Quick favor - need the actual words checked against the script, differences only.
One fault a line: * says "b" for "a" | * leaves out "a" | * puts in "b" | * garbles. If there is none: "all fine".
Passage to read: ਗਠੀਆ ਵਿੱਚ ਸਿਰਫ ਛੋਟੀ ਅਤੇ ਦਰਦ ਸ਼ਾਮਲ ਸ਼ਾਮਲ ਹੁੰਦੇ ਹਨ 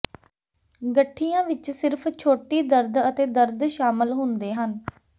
* puts in "ਦਰਦ"
* leaves out "ਸ਼ਾਮਲ"